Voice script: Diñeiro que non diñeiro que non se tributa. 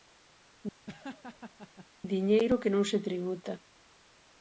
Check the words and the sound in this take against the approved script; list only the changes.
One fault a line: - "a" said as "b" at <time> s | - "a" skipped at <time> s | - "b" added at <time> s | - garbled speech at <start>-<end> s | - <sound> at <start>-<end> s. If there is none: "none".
- laugh at 0.9-1.9 s
- "diñeiro que non" skipped at 2.8 s